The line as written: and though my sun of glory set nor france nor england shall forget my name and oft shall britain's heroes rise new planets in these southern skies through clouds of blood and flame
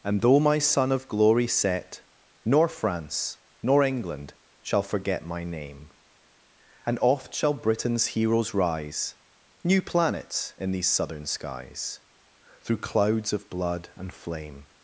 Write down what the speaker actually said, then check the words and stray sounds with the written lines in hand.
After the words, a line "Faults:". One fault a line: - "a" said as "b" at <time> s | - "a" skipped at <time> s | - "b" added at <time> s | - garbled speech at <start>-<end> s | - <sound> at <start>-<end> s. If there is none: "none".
and though my sun of glory set nor france nor england shall forget my name and oft shall britain's heroes rise new planets in these southern skies through clouds of blood and flame
Faults:
none